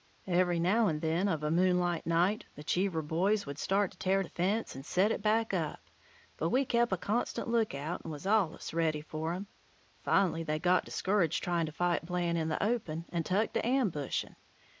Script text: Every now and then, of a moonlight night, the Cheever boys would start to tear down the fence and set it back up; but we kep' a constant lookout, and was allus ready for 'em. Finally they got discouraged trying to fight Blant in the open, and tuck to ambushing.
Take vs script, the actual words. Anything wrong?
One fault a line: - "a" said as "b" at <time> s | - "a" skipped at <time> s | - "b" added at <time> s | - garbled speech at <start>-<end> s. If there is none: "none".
- "down" skipped at 4.2 s